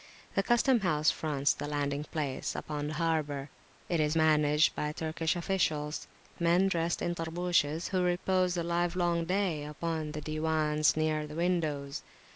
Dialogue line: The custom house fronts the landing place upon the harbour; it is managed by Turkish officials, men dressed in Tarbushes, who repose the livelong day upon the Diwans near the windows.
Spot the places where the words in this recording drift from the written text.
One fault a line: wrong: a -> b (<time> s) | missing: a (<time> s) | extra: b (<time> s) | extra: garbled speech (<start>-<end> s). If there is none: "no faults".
no faults